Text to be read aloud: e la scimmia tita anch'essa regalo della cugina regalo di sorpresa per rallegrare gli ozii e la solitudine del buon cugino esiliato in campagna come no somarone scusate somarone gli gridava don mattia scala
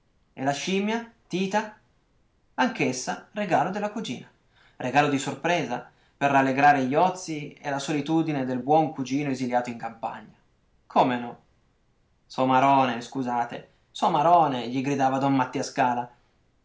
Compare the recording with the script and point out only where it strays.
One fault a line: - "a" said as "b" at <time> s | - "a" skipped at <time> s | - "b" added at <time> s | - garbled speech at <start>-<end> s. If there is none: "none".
none